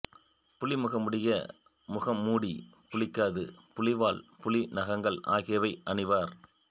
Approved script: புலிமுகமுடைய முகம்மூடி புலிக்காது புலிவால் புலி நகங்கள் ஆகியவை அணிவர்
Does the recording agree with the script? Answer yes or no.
yes